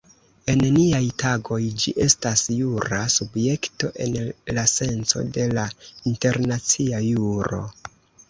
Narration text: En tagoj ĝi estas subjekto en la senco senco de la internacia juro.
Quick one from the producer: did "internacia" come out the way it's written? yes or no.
yes